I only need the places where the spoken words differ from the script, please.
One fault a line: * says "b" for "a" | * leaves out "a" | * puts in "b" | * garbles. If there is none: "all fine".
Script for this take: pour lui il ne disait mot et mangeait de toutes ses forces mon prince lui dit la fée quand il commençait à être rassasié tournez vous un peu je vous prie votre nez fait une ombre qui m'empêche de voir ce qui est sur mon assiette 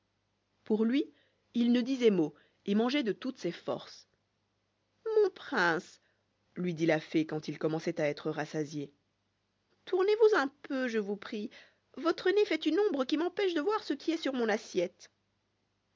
all fine